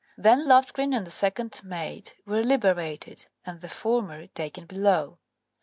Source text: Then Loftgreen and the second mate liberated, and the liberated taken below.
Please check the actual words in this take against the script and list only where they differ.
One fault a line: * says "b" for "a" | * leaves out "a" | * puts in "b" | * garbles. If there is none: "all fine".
* puts in "were"
* says "former" for "liberated"